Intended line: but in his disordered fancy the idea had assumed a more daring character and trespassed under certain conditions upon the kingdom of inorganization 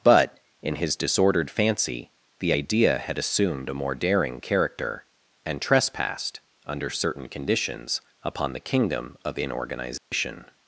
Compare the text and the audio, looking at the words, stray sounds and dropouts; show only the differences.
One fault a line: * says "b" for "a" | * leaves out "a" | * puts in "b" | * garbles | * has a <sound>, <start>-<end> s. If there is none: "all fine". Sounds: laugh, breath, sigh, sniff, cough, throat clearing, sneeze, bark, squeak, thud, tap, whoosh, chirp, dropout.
* has a dropout, 10.0-10.1 s